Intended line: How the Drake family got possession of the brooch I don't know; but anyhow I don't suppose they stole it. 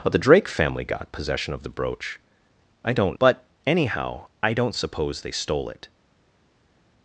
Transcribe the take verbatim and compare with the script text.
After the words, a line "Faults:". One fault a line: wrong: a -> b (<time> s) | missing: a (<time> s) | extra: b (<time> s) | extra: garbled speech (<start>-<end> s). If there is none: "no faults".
How the Drake family got possession of the brooch I don't; but anyhow I don't suppose they stole it.
Faults:
missing: know (3.2 s)